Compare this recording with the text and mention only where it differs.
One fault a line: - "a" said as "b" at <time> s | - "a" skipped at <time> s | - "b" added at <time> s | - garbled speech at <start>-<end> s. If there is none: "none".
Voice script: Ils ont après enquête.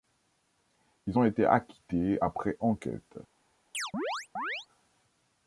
- "été acquittés" added at 1.2 s